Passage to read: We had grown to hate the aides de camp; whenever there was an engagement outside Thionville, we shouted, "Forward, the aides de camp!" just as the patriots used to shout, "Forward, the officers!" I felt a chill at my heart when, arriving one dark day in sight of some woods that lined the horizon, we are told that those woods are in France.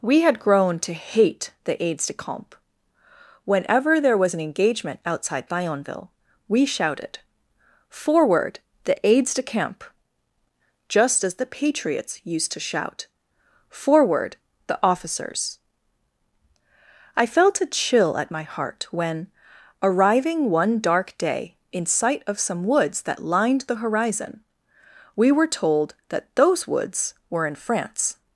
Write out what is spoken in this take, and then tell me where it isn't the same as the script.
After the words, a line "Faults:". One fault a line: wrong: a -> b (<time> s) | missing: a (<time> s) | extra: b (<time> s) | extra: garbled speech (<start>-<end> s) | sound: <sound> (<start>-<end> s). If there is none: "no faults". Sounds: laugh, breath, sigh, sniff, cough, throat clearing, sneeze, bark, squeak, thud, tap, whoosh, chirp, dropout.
We had grown to hate the aides de camp; whenever there was an engagement outside Thionville, we shouted, "Forward, the aides de camp!" just as the patriots used to shout, "Forward, the officers!" I felt a chill at my heart when, arriving one dark day in sight of some woods that lined the horizon, we were told that those woods were in France.
Faults:
wrong: are -> were (25.3 s)
wrong: are -> were (27.3 s)